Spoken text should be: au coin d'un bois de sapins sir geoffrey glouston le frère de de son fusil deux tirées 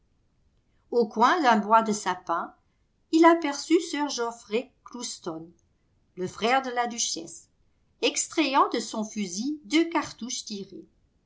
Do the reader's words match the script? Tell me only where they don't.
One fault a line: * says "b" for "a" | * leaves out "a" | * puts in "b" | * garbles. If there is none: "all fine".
* puts in "il aperçut"
* puts in "la duchesse extrayant"
* puts in "cartouches"